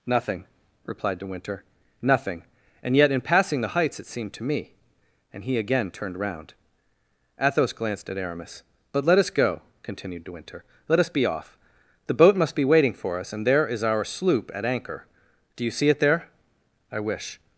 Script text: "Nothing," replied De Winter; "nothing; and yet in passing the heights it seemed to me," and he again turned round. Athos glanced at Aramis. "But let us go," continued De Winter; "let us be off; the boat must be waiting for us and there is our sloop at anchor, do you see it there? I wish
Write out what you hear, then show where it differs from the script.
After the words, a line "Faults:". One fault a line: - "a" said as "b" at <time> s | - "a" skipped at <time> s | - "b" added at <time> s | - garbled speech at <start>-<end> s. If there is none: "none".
"Nothing," replied De Winter; "nothing; and yet in passing the heights it seemed to me," and he again turned round. Athos glanced at Aramis. "But let us go," continued De Winter; "let us be off; the boat must be waiting for us and there is our sloop at anchor, do you see it there? I wish
Faults:
none